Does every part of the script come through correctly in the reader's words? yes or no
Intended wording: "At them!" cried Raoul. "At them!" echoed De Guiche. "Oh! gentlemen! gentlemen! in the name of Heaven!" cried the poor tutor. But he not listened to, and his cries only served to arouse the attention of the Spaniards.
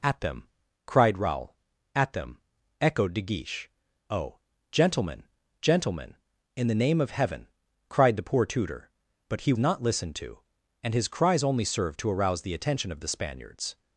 yes